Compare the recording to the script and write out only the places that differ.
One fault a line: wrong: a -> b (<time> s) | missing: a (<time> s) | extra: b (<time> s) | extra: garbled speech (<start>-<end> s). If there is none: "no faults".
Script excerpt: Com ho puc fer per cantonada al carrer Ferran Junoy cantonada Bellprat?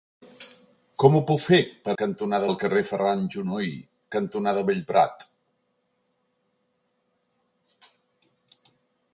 no faults